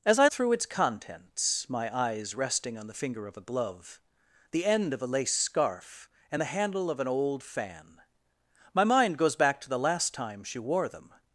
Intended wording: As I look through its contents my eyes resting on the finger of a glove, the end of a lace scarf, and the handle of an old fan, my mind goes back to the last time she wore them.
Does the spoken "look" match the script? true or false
false